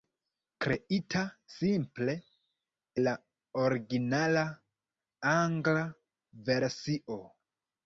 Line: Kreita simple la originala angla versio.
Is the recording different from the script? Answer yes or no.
no